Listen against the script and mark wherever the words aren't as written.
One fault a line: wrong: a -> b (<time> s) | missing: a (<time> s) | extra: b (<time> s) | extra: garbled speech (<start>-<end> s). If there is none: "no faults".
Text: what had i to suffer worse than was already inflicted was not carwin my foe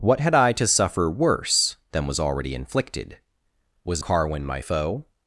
missing: not (4.0 s)